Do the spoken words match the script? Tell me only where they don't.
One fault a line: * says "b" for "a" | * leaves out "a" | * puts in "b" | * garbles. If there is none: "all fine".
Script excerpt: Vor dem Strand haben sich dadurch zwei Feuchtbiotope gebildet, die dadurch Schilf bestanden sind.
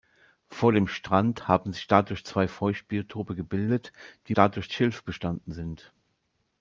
all fine